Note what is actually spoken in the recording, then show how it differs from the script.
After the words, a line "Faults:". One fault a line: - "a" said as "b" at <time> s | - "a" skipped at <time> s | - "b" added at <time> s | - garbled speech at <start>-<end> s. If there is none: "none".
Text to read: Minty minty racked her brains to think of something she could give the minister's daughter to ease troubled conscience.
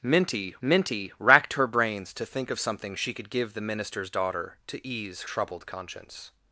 Minty minty racked her brains to think of something she could give the minister's daughter to ease troubled conscience.
Faults:
none